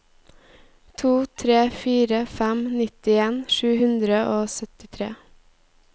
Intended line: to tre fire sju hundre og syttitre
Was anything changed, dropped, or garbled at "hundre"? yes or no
no